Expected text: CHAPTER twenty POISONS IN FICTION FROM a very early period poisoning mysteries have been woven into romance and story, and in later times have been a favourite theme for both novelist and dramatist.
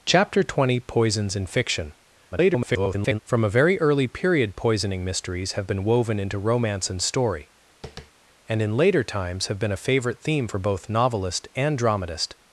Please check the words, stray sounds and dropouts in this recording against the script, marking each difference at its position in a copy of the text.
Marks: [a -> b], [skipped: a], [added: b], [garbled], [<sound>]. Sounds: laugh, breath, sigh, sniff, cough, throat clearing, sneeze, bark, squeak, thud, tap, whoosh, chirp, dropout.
CHAPTER twenty POISONS IN FICTION [garbled] FROM a very early period poisoning mysteries have been woven into romance and story, [tap] and in later times have been a favourite theme for both novelist and dramatist.